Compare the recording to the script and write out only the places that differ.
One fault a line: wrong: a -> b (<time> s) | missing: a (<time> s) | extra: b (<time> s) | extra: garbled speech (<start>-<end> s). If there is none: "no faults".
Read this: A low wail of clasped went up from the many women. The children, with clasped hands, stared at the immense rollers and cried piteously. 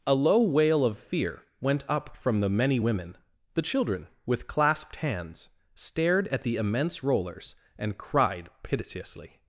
wrong: clasped -> fear (1.0 s)